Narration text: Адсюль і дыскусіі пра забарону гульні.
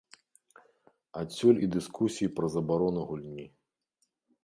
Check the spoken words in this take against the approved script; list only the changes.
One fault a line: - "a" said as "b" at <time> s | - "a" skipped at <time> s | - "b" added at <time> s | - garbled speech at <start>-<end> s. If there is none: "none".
none